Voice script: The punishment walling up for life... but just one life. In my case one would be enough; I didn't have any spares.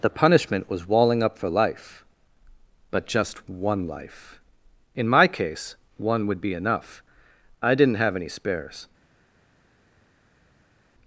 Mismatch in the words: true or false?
true